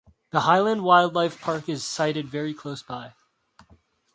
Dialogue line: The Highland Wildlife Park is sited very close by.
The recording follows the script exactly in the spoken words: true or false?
true